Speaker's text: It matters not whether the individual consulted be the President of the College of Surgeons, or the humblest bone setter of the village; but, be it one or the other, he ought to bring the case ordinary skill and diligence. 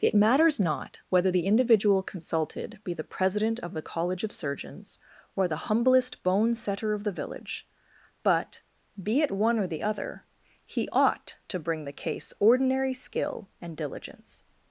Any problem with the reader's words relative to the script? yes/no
no